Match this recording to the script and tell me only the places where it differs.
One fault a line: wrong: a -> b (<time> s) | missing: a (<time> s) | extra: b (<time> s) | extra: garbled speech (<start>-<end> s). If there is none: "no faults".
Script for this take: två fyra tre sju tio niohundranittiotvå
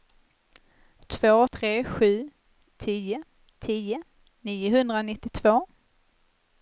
missing: fyra (1.5 s)
extra: tio (3.6 s)